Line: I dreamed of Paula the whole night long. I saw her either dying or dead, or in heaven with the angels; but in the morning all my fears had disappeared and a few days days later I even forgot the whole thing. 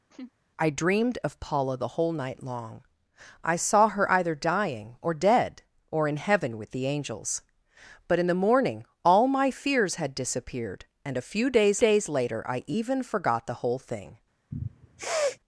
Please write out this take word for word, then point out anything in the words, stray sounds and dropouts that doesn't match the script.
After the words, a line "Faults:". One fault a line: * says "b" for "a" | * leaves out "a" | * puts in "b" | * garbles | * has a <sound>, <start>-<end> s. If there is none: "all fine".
I dreamed of Paula the whole night long. I saw her either dying or dead, or in heaven with the angels; but in the morning all my fears had disappeared and a few days days later I even forgot the whole thing.
Faults:
* has a laugh, 0.1-0.3 s
* has a sniff, 14.5-15.4 s